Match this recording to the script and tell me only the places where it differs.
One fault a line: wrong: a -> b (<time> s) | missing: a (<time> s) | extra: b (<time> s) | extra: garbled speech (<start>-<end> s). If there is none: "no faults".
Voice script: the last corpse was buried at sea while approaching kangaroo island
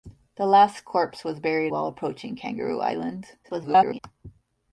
missing: at sea (1.7 s)
extra: garbled speech (3.4-4.0 s)